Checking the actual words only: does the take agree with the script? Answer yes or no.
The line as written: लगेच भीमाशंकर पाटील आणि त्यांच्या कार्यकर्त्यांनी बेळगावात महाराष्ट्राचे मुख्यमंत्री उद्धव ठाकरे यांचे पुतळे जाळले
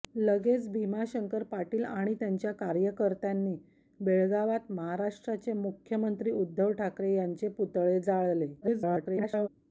no